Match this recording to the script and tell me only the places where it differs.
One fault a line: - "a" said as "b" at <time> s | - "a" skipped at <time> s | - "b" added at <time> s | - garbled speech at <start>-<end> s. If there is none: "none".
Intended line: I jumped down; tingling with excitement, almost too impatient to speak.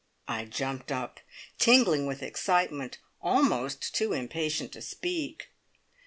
- "down" said as "up" at 0.9 s